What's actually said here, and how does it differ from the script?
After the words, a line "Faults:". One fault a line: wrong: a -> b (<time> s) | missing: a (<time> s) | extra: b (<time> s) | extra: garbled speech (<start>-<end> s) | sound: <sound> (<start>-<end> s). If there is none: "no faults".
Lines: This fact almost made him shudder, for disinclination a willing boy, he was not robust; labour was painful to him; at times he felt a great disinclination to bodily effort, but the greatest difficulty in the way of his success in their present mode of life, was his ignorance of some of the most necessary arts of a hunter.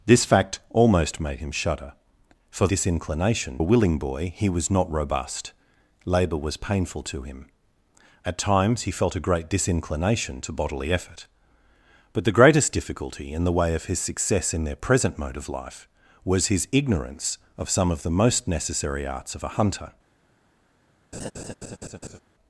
This fact almost made him shudder, for disinclination a willing boy, he was not robust; labour was painful to him; at times he felt a great disinclination to bodily effort, but the greatest difficulty in the way of his success in their present mode of life, was his ignorance of some of the most necessary arts of a hunter.
Faults:
sound: laugh (21.1-22.2 s)